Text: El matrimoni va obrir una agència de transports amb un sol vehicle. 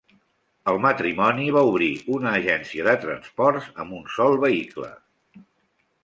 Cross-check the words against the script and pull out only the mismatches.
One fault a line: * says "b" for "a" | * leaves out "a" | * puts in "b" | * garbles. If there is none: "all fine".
all fine